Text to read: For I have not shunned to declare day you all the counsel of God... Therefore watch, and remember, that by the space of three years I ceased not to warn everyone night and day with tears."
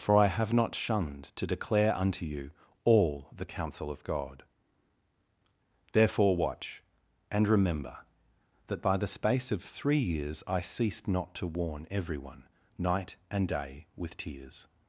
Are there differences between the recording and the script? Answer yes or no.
yes